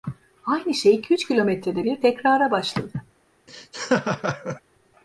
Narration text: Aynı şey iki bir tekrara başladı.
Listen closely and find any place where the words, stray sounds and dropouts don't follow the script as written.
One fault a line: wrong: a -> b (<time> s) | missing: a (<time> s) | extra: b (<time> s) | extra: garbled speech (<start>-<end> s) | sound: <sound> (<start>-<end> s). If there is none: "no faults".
extra: üç kilometrede (1.1 s)
sound: laugh (3.5-4.6 s)